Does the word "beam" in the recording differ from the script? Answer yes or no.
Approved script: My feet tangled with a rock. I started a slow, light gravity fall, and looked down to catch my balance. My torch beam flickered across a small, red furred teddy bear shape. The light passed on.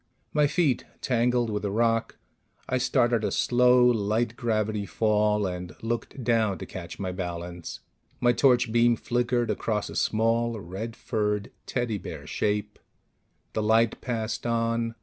no